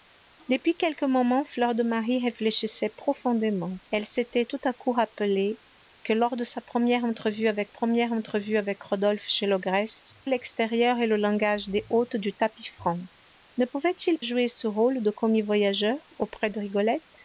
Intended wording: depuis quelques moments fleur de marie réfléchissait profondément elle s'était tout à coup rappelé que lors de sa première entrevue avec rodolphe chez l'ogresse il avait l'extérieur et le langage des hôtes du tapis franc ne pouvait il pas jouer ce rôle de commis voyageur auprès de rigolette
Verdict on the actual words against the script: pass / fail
fail